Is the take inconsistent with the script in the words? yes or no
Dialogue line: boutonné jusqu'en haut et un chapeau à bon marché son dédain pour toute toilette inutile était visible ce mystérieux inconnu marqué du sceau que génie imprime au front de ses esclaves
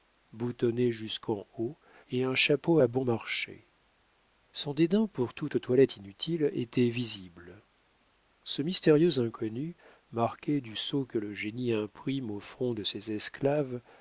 yes